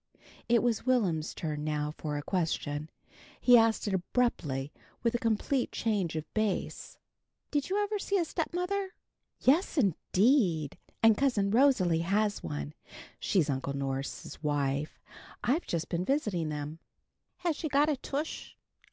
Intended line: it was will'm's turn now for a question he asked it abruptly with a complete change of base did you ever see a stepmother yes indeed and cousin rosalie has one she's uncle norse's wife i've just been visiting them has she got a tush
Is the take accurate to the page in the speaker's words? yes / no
yes